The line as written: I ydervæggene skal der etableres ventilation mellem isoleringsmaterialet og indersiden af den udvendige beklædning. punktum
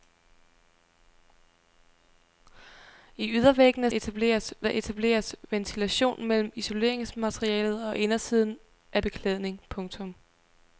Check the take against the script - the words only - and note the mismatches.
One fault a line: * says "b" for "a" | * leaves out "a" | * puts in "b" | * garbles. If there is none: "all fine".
* says "etableres" for "skal"
* leaves out "den udvendige"